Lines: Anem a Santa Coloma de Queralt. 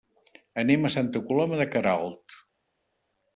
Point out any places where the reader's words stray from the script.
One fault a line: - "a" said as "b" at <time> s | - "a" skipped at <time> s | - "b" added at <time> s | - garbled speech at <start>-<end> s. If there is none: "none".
none